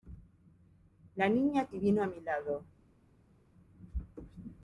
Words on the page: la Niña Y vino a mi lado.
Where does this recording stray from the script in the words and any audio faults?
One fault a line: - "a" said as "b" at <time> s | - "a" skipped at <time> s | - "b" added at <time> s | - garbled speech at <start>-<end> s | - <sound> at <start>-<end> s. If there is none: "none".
none